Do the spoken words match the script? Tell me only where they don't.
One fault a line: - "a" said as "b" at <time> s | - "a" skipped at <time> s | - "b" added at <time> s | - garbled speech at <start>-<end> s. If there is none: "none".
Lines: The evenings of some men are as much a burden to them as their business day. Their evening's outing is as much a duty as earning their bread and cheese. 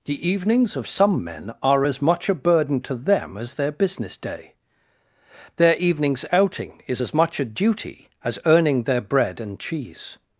none